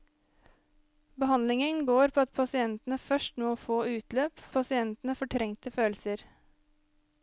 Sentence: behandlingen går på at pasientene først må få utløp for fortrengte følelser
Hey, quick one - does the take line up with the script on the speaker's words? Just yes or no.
no